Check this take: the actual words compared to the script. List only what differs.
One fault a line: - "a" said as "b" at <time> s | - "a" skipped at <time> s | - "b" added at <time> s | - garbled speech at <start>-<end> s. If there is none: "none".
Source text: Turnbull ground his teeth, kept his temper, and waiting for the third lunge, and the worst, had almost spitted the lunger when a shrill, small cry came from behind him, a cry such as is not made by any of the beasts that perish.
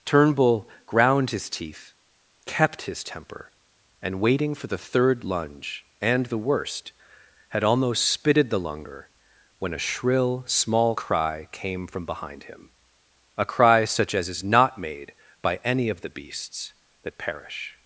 none